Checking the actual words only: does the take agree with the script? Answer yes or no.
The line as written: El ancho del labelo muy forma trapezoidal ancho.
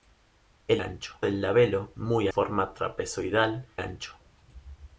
yes